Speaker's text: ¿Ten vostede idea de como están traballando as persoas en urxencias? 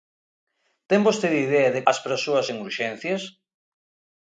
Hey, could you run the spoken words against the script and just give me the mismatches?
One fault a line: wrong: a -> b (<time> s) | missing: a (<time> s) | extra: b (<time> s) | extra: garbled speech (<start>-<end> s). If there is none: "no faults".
missing: como están traballando (1.8 s)